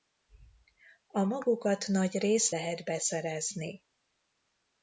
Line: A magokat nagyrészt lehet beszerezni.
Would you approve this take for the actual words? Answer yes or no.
yes